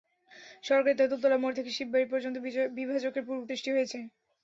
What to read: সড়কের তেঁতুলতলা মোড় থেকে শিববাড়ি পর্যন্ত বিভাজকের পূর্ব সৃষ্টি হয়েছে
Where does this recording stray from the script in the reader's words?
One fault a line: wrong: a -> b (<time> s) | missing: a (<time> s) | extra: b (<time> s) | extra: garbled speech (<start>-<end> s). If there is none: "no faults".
no faults